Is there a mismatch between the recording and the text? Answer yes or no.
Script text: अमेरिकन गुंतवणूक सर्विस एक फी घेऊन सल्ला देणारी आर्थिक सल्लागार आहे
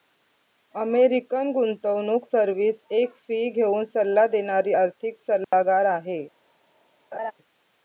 no